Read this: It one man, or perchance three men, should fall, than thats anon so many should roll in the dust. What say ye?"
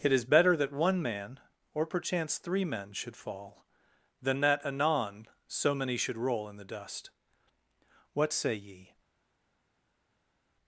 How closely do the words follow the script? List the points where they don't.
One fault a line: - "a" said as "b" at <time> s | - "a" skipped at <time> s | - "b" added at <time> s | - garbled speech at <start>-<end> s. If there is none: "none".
- "is better that" added at 0.1 s
- "thats" said as "that" at 4.4 s